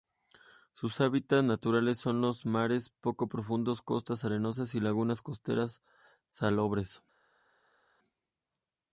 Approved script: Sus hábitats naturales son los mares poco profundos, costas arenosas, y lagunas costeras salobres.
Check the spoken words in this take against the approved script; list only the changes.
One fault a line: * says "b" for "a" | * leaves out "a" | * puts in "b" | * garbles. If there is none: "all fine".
all fine